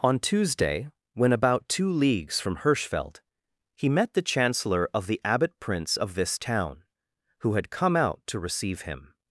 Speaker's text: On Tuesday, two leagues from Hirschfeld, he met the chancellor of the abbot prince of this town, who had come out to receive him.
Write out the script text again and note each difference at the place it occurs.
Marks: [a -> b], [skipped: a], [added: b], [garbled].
On Tuesday, [added: when about] two leagues from Hirschfeld, he met the chancellor of the abbot prince of this town, who had come out to receive him.